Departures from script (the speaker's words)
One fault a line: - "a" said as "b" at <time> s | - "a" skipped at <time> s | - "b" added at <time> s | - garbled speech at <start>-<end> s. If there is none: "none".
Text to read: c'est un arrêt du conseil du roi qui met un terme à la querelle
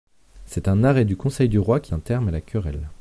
- "met" skipped at 1.9 s